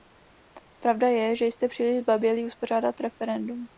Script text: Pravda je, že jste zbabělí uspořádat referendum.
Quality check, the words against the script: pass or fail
fail